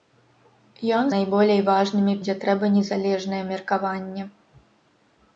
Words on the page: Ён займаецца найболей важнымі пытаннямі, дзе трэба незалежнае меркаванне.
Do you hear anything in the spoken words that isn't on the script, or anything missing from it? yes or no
yes